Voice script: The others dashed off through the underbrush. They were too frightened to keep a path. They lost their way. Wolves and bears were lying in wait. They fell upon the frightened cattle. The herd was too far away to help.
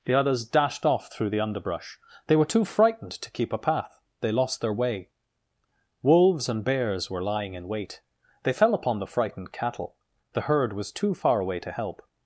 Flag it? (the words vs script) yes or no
no